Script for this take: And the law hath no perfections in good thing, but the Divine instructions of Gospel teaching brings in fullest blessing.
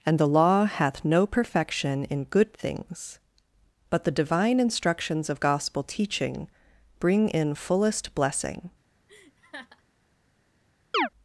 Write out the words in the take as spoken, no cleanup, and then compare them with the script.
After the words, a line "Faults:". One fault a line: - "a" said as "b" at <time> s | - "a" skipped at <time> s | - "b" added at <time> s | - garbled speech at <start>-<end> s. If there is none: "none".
And the law hath no perfection in good things, but the Divine instructions of Gospel teaching bring in fullest blessing.
Faults:
- "perfections" said as "perfection" at 1.3 s
- "thing" said as "things" at 2.5 s
- "brings" said as "bring" at 7.0 s